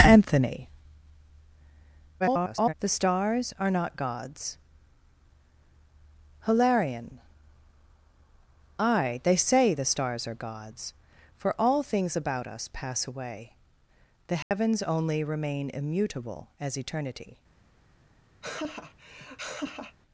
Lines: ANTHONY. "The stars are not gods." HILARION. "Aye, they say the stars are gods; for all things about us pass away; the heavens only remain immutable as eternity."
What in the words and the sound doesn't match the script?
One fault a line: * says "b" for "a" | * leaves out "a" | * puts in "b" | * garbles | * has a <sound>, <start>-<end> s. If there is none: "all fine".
* garbles
* has a dropout, 14.4-14.5 s
* has a laugh, 18.4-20.0 s